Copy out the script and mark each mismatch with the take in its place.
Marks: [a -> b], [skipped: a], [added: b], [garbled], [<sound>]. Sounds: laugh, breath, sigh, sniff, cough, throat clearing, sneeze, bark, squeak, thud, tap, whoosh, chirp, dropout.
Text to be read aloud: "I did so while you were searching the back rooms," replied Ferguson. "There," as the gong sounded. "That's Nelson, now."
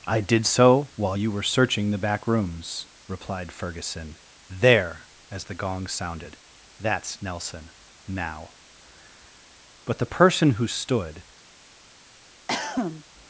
"I did so while you were searching the back rooms," replied Ferguson. "There," as the gong sounded. "That's Nelson, now." [added: But the person who stood] [cough]